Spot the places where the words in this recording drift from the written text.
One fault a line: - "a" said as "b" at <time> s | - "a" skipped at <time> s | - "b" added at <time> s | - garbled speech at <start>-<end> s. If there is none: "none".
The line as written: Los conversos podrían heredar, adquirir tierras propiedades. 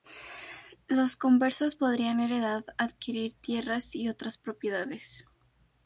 - "y otras" added at 3.9 s